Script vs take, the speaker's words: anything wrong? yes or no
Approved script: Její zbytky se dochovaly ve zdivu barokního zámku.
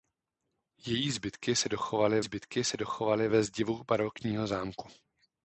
yes